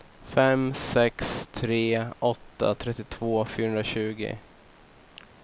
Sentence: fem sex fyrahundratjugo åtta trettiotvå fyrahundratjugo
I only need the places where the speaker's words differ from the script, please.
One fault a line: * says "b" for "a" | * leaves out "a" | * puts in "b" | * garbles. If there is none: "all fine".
* says "tre" for "fyrahundratjugo"